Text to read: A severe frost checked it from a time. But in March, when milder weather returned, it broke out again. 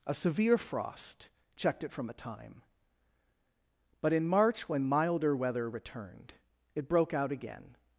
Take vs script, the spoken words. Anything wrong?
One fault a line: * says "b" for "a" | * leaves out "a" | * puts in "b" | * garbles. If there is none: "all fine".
all fine